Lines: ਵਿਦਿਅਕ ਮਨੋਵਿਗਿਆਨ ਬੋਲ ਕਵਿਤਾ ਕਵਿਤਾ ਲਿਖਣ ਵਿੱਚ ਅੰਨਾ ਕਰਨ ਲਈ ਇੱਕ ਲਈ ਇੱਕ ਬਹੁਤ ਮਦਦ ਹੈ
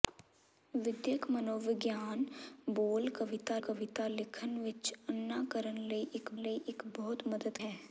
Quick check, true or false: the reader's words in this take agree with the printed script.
true